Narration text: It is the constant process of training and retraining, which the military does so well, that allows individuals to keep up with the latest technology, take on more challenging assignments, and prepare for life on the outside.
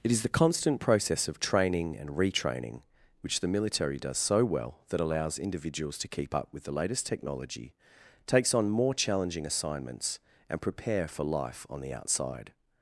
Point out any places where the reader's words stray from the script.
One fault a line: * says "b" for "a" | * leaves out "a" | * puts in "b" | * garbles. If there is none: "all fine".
* says "takes" for "take"